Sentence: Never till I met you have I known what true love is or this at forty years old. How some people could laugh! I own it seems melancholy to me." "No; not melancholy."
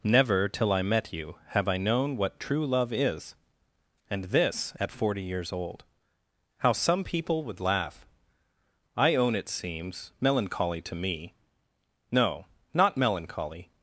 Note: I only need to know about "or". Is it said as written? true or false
false